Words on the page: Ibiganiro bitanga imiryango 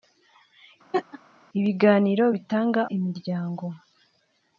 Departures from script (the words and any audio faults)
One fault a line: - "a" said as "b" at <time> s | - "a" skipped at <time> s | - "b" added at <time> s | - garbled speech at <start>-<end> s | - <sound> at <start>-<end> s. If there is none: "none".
- laugh at 0.9-1.2 s